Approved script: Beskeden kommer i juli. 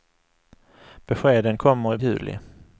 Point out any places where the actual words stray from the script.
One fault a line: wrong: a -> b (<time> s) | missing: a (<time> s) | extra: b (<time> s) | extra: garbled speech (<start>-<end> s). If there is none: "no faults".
no faults